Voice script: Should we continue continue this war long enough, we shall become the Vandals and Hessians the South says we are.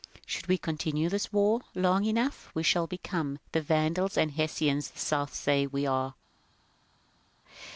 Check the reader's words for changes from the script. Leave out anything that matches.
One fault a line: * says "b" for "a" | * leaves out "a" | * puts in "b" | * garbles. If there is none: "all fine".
* leaves out "continue"